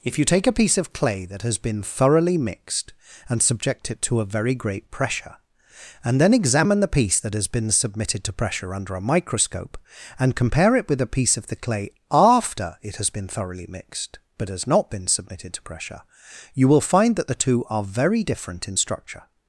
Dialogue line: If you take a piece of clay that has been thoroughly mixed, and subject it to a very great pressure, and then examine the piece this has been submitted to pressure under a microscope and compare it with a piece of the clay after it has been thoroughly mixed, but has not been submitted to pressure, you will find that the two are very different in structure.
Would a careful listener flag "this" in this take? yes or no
yes